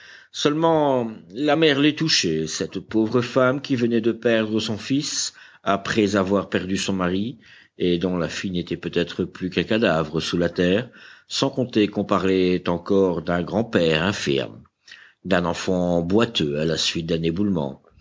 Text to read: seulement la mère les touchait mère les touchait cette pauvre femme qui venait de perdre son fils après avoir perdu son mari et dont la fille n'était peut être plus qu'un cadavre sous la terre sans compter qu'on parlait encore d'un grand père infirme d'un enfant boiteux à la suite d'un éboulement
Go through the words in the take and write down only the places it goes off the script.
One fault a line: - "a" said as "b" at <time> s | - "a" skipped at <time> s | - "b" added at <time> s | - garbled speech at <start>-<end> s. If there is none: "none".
- "mère les touchait" skipped at 2.5 s